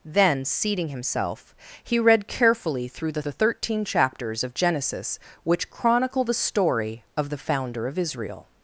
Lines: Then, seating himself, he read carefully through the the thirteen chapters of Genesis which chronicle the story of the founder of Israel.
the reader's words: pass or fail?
pass